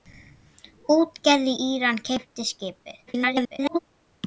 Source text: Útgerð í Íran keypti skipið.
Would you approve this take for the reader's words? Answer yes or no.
no